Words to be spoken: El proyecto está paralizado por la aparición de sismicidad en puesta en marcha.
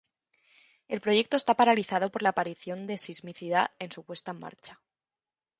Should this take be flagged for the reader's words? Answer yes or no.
yes